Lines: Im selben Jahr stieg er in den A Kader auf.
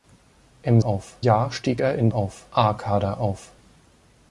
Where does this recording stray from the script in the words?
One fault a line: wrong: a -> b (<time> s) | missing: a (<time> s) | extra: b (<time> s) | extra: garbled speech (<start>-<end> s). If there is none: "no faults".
wrong: selben -> auf (0.8 s)
wrong: den -> auf (2.1 s)